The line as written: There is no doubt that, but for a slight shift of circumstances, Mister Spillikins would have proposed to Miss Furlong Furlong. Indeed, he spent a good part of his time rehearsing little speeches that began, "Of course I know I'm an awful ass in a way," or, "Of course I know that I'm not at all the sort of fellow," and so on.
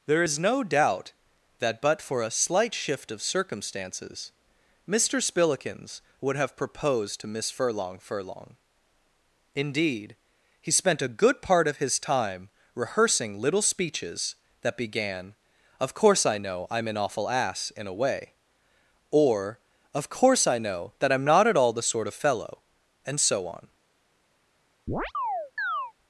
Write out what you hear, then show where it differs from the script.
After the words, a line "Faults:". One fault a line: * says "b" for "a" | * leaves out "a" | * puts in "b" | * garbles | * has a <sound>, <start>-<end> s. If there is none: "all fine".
There is no doubt that, but for a slight shift of circumstances, Mister Spillikins would have proposed to Miss Furlong Furlong. Indeed, he spent a good part of his time rehearsing little speeches that began, "Of course I know I'm an awful ass in a way," or, "Of course I know that I'm not at all the sort of fellow," and so on.
Faults:
* has a chirp, 24.9-25.9 s